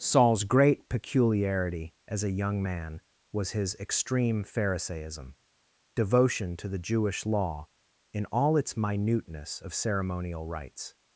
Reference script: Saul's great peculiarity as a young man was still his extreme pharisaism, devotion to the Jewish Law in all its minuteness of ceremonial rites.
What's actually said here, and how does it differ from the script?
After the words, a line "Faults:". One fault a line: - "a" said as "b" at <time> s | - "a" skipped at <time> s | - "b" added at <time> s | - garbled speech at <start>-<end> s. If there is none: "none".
Saul's great peculiarity as a young man was his extreme pharisaism, devotion to the Jewish Law in all its minuteness of ceremonial rites.
Faults:
- "still" skipped at 3.5 s